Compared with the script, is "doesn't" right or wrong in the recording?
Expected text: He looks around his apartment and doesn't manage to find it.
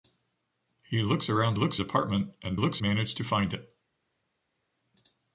wrong